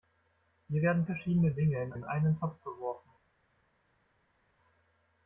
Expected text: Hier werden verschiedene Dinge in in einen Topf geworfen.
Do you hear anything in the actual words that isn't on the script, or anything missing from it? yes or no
no